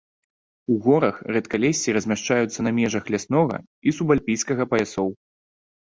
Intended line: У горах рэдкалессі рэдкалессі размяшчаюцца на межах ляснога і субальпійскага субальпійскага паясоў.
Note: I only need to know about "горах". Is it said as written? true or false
true